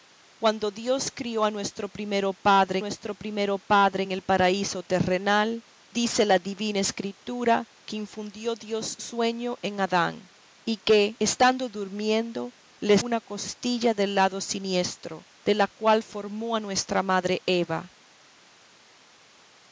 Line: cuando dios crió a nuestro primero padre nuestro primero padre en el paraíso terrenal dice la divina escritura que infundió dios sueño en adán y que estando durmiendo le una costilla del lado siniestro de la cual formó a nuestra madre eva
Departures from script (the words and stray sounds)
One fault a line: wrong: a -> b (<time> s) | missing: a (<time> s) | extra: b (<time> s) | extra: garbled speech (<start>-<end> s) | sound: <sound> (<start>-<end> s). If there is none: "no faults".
no faults